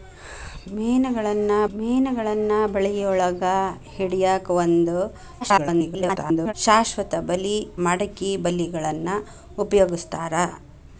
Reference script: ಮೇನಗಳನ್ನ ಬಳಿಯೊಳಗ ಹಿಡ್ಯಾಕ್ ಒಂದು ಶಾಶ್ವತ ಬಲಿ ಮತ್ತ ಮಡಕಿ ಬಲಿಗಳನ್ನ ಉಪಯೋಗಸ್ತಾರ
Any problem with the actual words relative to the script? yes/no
yes